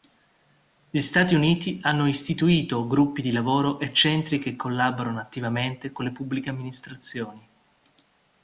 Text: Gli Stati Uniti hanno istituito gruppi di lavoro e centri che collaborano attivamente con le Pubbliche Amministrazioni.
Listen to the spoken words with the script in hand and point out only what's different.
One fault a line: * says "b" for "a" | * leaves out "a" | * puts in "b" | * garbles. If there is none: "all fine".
all fine